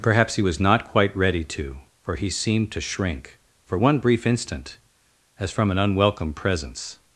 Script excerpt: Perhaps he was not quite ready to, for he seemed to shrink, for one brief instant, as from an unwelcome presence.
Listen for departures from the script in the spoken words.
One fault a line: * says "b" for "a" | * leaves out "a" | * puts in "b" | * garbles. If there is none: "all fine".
all fine